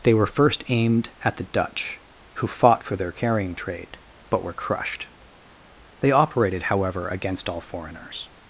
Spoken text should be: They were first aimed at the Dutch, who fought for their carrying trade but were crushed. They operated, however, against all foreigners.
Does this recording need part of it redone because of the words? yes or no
no